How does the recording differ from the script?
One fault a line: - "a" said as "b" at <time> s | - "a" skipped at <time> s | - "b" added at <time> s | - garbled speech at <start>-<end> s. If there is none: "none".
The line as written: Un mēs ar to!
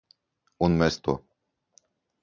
none